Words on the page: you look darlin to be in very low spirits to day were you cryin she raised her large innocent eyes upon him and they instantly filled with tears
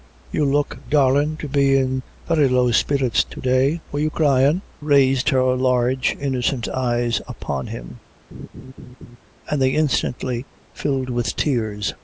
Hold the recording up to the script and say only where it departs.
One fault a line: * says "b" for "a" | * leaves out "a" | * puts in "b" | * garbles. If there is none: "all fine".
* leaves out "she"